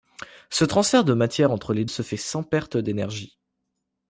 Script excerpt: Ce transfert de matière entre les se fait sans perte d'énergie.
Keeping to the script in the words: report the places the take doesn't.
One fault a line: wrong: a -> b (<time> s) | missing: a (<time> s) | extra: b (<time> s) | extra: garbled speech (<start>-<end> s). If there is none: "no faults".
no faults